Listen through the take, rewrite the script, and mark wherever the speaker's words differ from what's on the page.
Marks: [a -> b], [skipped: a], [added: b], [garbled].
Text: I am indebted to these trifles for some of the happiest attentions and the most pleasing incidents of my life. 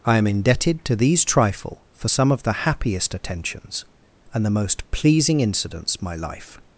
I am indebted to these [trifles -> trifle] for some of the happiest attentions and the most pleasing incidents [skipped: of] my life.